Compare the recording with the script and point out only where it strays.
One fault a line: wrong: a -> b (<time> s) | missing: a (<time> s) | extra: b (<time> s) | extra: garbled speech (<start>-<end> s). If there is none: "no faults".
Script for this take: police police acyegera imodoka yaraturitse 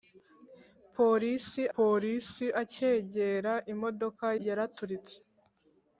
no faults